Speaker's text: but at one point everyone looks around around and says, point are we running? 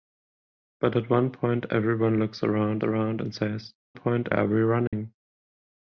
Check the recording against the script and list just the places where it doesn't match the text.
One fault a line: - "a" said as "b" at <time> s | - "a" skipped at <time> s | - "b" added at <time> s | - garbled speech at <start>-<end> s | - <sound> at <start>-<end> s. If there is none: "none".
- dropout at 4.9-4.9 s